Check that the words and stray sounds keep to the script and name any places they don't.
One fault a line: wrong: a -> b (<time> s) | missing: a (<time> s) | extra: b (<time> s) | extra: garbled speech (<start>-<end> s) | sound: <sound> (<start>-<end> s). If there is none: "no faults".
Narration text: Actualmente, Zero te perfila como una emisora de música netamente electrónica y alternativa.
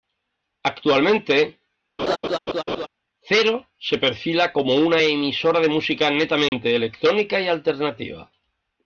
sound: laugh (2.0-2.9 s)
wrong: te -> se (3.8 s)
sound: dropout (6.5-6.5 s)